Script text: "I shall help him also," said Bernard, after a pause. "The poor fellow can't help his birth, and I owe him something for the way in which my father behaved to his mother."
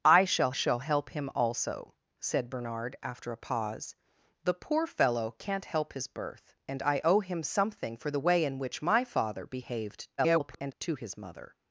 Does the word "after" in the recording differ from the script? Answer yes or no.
no